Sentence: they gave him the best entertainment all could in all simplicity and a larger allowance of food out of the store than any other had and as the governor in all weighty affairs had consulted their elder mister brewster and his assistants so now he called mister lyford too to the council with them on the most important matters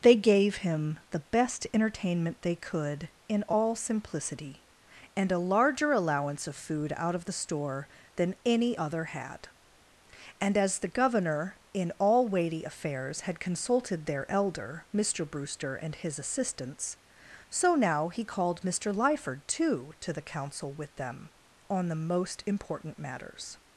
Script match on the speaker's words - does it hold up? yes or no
no